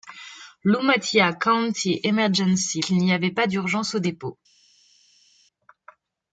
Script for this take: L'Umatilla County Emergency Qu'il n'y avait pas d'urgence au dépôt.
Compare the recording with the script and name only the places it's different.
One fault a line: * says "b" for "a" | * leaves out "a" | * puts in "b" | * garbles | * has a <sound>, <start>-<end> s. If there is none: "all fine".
all fine